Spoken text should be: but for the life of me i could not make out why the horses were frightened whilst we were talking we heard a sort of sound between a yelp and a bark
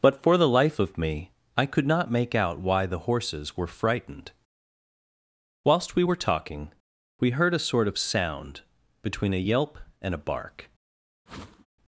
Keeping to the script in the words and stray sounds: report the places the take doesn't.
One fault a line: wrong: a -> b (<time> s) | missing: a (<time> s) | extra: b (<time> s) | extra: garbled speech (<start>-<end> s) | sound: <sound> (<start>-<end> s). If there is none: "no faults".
sound: whoosh (11.3-11.7 s)